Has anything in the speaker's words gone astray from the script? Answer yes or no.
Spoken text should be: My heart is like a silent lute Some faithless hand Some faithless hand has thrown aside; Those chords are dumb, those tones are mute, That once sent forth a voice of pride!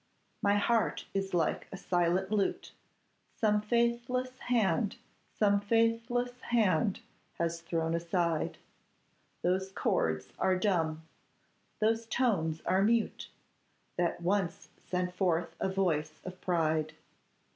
no